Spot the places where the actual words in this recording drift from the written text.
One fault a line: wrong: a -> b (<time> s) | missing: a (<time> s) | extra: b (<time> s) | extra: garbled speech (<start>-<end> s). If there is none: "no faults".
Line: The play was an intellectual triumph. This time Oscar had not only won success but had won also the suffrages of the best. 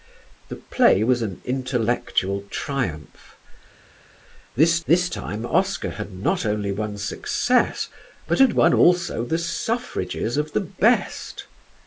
extra: this (4.9 s)